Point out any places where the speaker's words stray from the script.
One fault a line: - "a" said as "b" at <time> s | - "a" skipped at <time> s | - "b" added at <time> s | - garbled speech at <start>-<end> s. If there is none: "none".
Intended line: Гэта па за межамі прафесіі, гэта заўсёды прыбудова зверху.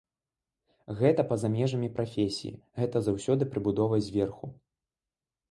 none